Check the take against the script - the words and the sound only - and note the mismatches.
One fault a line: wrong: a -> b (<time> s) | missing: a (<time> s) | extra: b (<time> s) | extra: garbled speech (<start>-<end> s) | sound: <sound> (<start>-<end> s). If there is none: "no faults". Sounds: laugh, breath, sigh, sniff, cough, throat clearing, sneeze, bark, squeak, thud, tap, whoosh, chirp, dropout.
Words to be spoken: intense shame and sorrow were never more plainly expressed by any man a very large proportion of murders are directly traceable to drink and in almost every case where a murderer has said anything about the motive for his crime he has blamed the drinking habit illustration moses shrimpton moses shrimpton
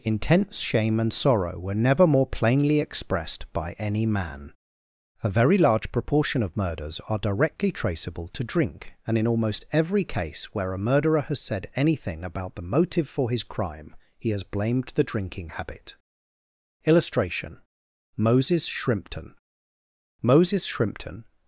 no faults